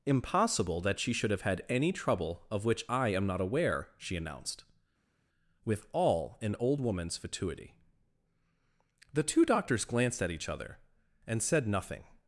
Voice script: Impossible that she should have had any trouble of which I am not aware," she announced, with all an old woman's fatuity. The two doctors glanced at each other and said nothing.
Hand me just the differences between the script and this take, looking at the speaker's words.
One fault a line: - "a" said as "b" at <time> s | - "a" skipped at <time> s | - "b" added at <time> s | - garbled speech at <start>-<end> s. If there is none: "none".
none